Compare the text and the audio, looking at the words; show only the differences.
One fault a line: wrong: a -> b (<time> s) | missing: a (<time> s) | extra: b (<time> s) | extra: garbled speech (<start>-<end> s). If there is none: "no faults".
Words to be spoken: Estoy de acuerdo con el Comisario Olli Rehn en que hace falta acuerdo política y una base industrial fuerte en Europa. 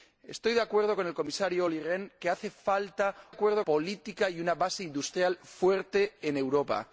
no faults